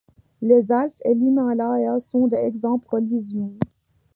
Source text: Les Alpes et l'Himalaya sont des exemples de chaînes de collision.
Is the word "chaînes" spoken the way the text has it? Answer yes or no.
no